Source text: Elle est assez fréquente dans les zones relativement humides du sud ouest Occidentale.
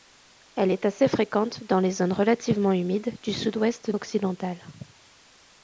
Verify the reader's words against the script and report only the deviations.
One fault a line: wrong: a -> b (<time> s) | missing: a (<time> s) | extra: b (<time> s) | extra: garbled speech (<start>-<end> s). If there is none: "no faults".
no faults